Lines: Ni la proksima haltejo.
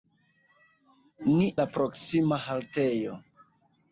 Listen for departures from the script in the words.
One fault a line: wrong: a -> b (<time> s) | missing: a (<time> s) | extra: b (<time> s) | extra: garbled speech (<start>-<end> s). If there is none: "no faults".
no faults